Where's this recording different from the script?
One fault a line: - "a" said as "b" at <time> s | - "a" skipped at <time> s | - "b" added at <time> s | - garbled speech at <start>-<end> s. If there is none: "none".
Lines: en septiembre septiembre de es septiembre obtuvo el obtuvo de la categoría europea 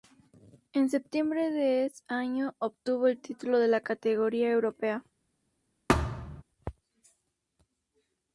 - "septiembre" skipped at 1.5 s
- "septiembre" said as "año" at 2.1 s
- "obtuvo" said as "título" at 3.2 s